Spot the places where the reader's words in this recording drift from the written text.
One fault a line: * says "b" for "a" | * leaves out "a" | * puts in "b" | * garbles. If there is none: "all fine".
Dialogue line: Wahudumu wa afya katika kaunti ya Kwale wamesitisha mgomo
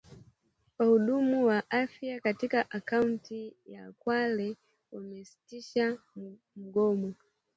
all fine